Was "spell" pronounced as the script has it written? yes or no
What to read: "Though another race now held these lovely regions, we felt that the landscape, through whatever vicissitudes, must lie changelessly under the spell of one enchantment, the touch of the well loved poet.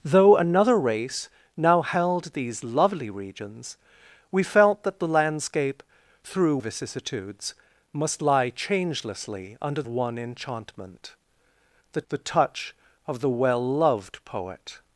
no